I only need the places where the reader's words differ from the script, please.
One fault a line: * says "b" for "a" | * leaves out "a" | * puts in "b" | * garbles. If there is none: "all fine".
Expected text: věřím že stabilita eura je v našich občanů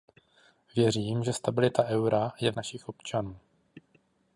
all fine